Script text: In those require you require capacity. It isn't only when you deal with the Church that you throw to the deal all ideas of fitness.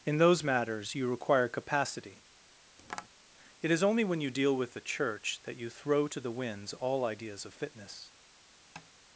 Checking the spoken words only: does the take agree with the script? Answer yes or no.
no